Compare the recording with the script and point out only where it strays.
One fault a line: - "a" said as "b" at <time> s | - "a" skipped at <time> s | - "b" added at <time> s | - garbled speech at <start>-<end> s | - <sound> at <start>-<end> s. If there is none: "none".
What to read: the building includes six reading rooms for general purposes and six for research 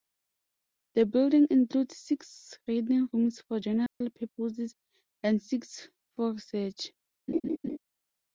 - dropout at 3.9-4.0 s
- laugh at 7.3-7.8 s